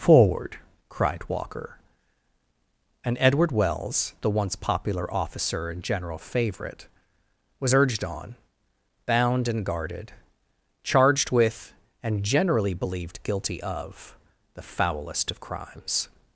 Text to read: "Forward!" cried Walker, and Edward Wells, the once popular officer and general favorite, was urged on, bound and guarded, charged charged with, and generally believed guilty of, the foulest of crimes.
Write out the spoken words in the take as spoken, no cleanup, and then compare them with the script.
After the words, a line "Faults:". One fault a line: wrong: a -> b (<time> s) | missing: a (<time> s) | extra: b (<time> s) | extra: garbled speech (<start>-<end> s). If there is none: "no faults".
"Forward!" cried Walker, and Edward Wells, the once popular officer and general favorite, was urged on, bound and guarded, charged with, and generally believed guilty of, the foulest of crimes.
Faults:
missing: charged (11.3 s)